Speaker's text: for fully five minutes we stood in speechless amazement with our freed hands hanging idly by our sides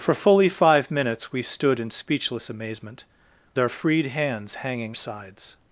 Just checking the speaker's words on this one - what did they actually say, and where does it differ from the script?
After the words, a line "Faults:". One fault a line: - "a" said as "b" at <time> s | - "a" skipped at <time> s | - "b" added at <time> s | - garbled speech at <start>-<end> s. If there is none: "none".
for fully five minutes we stood in speechless amazement our freed hands hanging sides
Faults:
- "with" skipped at 3.0 s
- "idly by our" skipped at 5.0 s